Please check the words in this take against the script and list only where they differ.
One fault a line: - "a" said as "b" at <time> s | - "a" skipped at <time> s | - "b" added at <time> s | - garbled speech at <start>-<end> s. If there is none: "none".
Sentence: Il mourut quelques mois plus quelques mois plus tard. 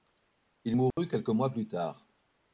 - "quelques mois plus" skipped at 1.7 s